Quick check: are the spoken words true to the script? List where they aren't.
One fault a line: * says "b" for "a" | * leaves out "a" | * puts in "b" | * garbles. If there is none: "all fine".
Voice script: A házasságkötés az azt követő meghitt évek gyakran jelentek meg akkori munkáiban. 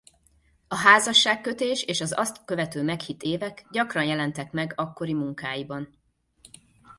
* puts in "és"